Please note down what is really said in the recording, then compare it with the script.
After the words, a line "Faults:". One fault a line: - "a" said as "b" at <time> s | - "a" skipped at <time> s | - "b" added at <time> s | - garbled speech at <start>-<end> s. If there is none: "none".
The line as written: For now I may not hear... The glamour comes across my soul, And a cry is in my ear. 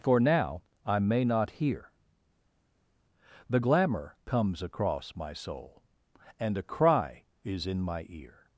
For now I may not hear... The glamour comes across my soul, And a cry is in my ear.
Faults:
none